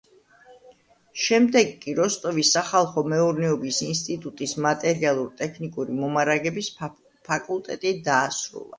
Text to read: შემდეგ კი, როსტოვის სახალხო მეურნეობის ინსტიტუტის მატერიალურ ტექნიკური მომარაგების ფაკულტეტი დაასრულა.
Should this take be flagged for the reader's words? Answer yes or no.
no